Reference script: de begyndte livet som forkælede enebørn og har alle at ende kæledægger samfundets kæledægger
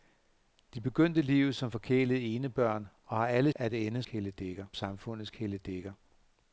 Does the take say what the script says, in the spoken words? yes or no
yes